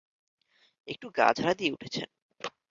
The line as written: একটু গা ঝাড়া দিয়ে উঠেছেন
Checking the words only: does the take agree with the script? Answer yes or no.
yes